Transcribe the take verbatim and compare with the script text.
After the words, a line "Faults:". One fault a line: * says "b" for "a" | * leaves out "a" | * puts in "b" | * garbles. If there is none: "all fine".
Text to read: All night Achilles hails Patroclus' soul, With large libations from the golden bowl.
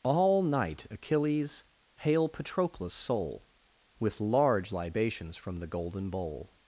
All night Achilles hail Patroclus' soul, With large libations from the golden bowl.
Faults:
* says "hail" for "hails"